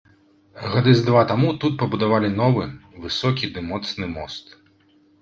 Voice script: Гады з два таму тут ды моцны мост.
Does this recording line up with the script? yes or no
no